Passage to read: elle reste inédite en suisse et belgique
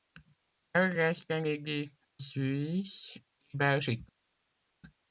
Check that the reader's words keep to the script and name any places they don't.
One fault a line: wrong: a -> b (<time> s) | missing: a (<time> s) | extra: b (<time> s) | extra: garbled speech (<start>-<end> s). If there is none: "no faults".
missing: en (1.9 s)